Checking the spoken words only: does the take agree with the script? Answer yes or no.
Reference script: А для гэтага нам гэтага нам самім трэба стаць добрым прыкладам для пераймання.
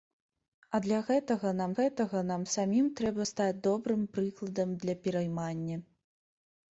yes